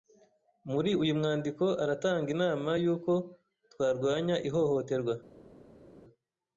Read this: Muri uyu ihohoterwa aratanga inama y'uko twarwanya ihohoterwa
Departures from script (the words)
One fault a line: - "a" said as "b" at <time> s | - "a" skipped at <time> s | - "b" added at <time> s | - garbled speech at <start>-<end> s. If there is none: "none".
- "ihohoterwa" said as "mwandiko" at 1.2 s